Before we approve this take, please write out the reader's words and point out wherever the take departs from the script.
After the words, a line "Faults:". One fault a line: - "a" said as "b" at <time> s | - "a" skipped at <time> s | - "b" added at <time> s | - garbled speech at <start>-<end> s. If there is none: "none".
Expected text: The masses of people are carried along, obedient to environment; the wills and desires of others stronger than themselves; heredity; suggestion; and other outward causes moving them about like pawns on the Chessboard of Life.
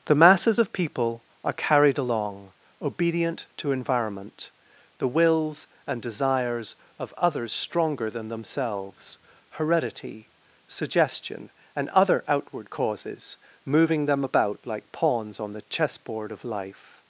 The masses of people are carried along, obedient to environment; the wills and desires of others stronger than themselves; heredity; suggestion; and other outward causes moving them about like pawns on the Chessboard of Life.
Faults:
none